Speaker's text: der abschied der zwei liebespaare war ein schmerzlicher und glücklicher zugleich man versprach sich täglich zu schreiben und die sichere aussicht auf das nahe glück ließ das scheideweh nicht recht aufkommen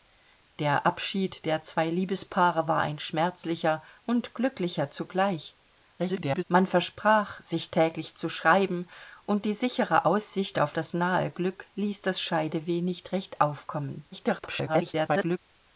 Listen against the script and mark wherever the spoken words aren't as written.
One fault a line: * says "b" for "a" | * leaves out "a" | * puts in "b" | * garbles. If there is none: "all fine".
* garbles
* garbles